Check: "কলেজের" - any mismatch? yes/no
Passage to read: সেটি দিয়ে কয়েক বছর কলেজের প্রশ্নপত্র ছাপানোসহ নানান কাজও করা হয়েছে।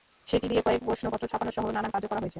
yes